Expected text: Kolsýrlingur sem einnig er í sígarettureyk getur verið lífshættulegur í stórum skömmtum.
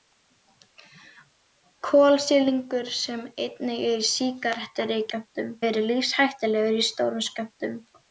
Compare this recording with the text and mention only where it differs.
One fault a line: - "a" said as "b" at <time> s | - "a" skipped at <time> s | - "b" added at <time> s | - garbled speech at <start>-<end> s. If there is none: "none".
- "getur" said as "skömmtum" at 5.1 s